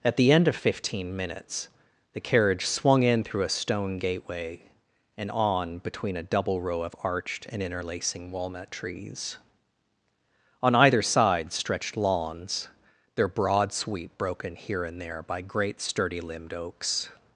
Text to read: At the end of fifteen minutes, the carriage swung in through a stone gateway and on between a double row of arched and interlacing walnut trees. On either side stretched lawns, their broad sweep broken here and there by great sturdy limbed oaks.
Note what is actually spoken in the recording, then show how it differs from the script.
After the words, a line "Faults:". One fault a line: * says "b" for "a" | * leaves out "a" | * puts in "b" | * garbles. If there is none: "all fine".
At the end of fifteen minutes, the carriage swung in through a stone gateway and on between a double row of arched and interlacing walnut trees. On either side stretched lawns, their broad sweep broken here and there by great sturdy limbed oaks.
Faults:
all fine